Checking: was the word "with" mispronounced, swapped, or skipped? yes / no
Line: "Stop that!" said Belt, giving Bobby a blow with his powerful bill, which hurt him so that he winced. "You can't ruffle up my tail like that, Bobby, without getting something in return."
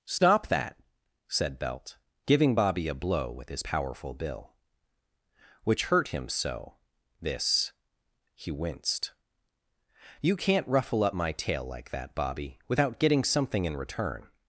no